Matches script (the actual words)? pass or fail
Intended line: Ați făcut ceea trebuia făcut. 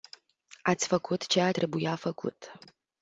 pass